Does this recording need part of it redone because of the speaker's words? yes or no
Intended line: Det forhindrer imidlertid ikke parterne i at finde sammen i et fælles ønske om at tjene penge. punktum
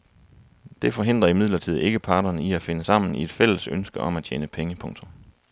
no